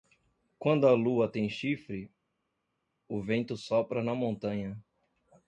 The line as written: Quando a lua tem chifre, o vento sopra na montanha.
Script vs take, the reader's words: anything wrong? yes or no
no